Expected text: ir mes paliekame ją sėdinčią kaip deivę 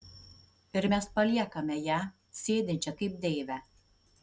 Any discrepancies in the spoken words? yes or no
no